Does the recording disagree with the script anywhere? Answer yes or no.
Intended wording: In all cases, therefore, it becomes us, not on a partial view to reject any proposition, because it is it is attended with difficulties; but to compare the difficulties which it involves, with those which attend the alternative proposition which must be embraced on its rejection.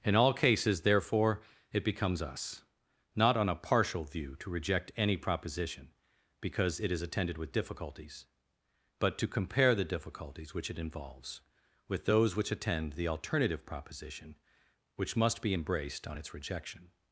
yes